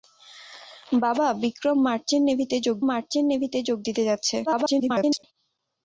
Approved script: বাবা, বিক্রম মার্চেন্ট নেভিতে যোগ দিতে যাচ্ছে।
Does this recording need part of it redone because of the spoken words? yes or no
yes